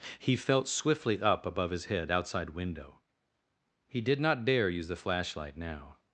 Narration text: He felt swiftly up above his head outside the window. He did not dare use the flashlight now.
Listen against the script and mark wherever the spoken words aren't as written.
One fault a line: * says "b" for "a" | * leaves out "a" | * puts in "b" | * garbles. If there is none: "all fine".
* leaves out "the"